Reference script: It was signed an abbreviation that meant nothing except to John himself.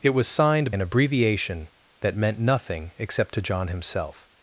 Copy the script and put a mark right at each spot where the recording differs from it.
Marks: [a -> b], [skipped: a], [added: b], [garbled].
It was signed an abbreviation that meant nothing except to John himself.